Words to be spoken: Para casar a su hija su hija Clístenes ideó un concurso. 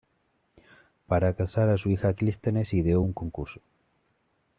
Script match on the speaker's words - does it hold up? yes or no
no